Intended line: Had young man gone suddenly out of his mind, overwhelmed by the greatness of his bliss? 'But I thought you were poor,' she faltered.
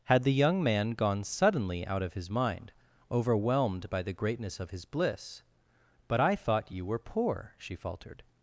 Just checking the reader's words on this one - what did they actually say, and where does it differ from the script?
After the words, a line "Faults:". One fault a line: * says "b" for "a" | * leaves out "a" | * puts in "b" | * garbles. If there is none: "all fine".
Had the young man gone suddenly out of his mind, overwhelmed by the greatness of his bliss? 'But I thought you were poor,' she faltered.
Faults:
* puts in "the"